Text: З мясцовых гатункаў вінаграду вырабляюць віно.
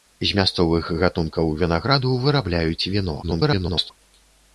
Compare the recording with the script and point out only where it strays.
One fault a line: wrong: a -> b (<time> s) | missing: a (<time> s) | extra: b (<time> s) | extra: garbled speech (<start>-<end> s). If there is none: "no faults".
extra: garbled speech (3.2-3.9 s)